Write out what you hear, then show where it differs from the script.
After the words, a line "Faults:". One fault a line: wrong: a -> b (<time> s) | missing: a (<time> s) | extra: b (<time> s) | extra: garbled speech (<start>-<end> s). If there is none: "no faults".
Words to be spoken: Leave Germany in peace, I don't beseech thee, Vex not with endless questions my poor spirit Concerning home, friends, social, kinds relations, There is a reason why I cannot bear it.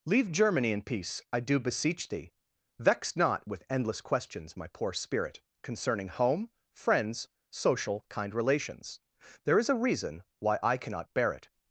Leave Germany in peace, I do beseech thee, Vex not with endless questions my poor spirit Concerning home, friends, social, kind relations, There is a reason why I cannot bear it.
Faults:
wrong: don't -> do (1.4 s)
wrong: kinds -> kind (8.1 s)